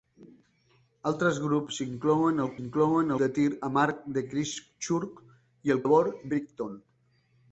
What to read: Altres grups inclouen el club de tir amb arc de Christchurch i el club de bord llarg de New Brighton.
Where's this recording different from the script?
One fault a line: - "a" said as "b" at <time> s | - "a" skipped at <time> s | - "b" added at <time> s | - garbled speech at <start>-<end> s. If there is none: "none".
- "club" said as "inclouen" at 2.6 s
- "club" skipped at 5.8 s
- "llarg de New" skipped at 6.3 s